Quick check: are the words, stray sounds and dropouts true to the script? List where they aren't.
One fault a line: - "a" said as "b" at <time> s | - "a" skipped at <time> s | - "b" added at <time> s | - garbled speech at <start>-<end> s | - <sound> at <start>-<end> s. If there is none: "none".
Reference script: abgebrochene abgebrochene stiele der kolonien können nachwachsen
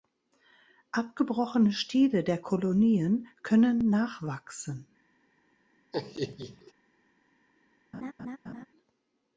- "abgebrochene" skipped at 1.7 s
- laugh at 5.9-6.7 s
- laugh at 7.9-8.7 s